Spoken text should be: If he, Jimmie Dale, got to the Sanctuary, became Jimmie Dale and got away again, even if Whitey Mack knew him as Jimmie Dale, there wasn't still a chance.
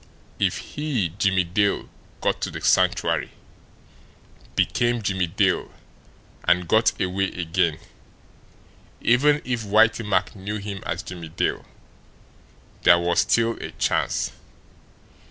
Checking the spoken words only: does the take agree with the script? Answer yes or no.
no